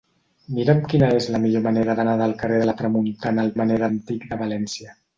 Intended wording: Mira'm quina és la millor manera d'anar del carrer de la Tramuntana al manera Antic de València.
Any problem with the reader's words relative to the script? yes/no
no